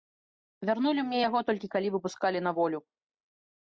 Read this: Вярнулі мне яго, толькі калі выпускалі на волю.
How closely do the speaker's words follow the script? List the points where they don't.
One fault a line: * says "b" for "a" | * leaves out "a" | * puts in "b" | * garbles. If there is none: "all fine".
all fine